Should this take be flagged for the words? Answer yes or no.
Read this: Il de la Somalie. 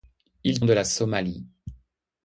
no